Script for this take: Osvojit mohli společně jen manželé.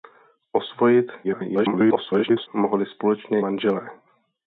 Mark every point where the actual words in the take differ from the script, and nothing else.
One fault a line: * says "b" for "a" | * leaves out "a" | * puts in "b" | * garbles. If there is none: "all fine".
* garbles
* leaves out "jen"